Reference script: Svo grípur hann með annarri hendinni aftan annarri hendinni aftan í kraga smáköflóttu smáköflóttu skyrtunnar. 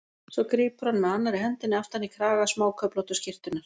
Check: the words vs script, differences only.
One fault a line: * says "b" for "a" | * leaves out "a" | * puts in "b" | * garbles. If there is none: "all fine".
* leaves out "annarri hendinni aftan"
* leaves out "smáköflóttu"